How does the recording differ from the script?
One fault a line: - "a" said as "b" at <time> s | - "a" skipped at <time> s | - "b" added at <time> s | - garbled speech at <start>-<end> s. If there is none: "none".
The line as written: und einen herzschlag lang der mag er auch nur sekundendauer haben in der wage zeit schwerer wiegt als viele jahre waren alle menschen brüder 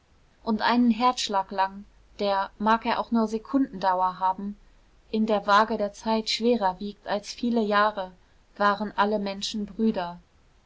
- "der" added at 5.7 s